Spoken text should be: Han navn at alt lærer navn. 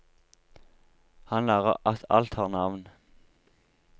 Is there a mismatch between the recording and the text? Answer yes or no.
yes